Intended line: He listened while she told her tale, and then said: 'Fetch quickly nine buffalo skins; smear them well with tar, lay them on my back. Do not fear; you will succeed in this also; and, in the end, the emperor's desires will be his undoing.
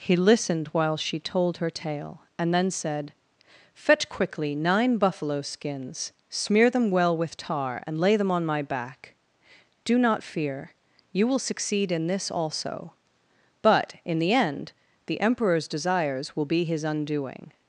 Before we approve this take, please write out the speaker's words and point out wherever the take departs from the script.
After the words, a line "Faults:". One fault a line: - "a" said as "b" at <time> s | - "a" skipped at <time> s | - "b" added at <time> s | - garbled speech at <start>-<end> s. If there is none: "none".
He listened while she told her tale, and then said: 'Fetch quickly nine buffalo skins; smear them well with tar, and lay them on my back. Do not fear; you will succeed in this also; but, in the end, the emperor's desires will be his undoing.
Faults:
- "and" added at 7.8 s
- "and" said as "but" at 13.6 s